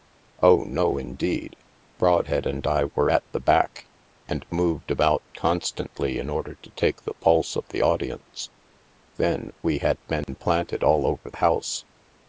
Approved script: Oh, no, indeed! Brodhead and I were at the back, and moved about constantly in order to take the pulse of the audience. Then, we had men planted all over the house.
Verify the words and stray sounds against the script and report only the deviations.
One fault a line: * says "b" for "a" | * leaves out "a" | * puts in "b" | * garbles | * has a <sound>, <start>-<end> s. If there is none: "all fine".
* has a dropout, 10.2-10.3 s
* leaves out "the"